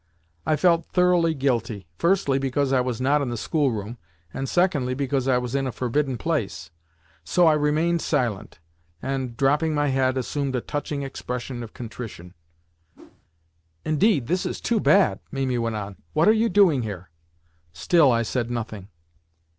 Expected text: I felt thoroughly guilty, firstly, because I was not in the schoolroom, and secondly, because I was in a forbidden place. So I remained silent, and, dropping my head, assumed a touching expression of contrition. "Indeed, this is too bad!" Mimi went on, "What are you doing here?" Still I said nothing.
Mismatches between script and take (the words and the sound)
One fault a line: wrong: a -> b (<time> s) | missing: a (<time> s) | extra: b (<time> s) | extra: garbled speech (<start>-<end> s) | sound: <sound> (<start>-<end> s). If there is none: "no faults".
sound: whoosh (12.9-13.3 s)